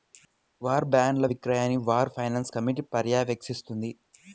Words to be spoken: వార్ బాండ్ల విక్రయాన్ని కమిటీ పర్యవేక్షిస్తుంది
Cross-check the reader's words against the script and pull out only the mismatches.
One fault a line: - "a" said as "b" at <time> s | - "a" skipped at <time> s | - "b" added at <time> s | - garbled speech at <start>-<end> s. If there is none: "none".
- "వార్ ఫైనాన్స్" added at 1.9 s